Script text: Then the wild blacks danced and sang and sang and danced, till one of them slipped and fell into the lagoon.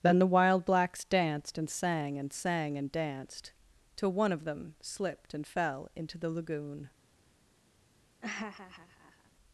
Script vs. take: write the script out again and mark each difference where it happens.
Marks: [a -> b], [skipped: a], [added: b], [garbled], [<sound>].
Then the wild blacks danced and sang and sang and danced, till one of them slipped and fell into the lagoon. [laugh]